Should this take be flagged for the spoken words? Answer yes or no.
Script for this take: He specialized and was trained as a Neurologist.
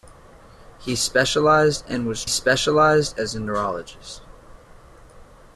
yes